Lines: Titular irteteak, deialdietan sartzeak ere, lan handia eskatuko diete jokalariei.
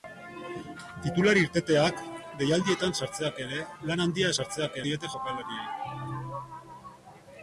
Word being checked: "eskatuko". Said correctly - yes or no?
no